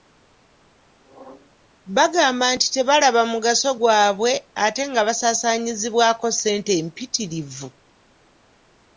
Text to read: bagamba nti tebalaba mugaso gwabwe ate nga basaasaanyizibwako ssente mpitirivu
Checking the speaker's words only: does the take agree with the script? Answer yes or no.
yes